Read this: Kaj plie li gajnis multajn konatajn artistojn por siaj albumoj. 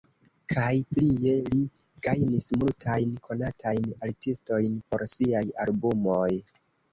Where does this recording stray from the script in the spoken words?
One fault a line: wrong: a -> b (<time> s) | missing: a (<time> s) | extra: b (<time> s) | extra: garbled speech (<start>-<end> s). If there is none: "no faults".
no faults